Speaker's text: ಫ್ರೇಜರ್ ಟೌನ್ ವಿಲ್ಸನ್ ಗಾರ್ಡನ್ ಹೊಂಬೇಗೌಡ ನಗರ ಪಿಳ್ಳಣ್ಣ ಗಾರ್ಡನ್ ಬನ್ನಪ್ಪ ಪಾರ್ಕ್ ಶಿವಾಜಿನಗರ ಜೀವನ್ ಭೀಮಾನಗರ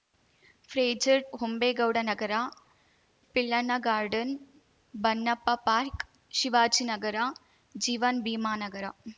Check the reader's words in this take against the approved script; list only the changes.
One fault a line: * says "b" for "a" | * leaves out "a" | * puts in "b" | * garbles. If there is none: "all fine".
* leaves out "ಟೌನ್ ವಿಲ್ಸನ್ ಗಾರ್ಡನ್"